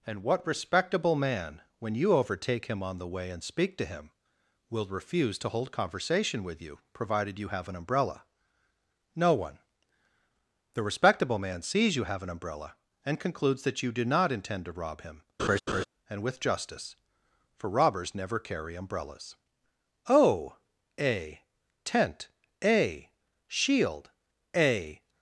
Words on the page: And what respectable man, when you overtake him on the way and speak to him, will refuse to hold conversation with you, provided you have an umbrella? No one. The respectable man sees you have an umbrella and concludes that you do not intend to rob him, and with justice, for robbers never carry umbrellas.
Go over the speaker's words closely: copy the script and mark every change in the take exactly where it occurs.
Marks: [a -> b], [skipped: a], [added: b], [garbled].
And what respectable man, when you overtake him on the way and speak to him, will refuse to hold conversation with you, provided you have an umbrella? No one. The respectable man sees you have an umbrella and concludes that you do not intend to rob him, and with justice, for robbers never carry umbrellas. [added: O a tent a shield a]